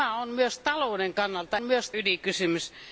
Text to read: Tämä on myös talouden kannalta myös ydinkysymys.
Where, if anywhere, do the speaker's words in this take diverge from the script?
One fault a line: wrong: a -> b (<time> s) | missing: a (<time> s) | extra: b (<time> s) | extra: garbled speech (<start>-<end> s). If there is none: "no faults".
no faults